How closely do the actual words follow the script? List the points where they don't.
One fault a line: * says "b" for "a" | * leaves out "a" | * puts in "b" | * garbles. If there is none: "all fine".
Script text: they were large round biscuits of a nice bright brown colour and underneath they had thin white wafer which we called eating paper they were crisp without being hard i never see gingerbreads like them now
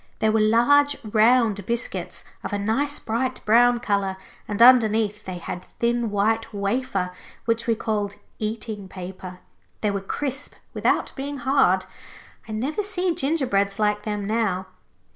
all fine